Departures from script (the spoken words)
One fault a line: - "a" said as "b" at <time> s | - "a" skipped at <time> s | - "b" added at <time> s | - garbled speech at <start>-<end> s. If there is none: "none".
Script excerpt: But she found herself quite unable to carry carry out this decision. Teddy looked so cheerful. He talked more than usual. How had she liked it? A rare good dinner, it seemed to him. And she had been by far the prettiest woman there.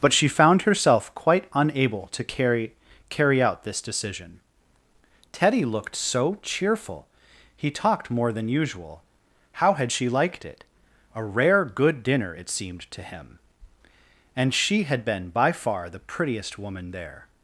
none